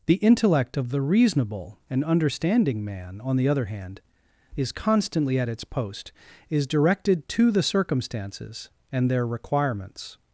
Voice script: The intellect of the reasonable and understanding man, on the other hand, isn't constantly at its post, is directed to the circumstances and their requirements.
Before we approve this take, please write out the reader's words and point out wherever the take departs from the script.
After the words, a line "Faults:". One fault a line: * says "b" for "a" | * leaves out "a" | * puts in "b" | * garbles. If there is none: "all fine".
The intellect of the reasonable and understanding man, on the other hand, is constantly at its post, is directed to the circumstances and their requirements.
Faults:
* says "is" for "isn't"